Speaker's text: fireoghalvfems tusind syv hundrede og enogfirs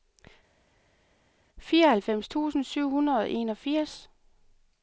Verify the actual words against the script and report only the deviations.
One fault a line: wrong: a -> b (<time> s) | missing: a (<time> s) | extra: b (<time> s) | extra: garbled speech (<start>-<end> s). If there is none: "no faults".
no faults